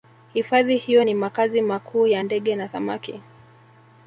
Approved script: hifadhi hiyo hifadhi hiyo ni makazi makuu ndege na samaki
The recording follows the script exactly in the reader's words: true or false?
false